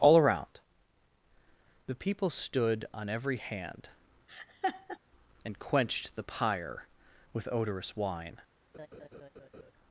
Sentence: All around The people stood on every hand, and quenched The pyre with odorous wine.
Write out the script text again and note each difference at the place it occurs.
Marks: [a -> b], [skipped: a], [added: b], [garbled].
All around The people stood on every hand, and quenched The pyre with odorous wine.